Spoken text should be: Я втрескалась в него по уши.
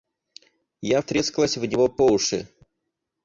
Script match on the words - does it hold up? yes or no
yes